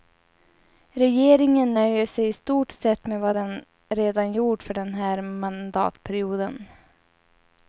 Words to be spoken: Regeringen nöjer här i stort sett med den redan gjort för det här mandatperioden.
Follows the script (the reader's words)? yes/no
no